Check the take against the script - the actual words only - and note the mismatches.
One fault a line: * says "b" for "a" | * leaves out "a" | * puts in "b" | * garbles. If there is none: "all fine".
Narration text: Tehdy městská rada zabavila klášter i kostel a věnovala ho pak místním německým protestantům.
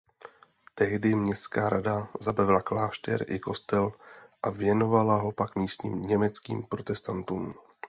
all fine